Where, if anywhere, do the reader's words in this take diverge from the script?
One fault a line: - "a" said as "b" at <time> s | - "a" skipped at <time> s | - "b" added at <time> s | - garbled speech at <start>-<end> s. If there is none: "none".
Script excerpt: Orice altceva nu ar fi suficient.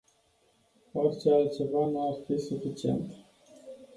none